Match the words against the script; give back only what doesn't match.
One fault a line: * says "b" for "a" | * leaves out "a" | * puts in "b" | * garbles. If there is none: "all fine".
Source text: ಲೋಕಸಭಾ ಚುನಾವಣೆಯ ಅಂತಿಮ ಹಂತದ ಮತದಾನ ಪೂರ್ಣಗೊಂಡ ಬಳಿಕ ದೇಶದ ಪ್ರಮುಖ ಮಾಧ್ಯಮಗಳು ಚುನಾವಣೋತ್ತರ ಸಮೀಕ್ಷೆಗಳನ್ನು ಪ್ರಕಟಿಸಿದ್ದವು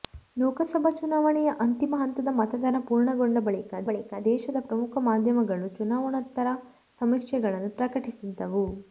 * puts in "ಬಳಿಕ"